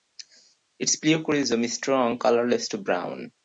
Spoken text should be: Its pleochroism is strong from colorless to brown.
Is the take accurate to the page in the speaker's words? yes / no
no